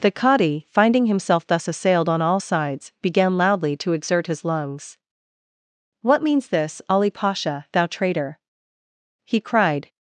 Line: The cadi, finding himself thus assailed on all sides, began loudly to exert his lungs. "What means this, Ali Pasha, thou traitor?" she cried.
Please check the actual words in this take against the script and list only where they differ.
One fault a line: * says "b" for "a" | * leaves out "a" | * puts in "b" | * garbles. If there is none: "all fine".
* says "he" for "she"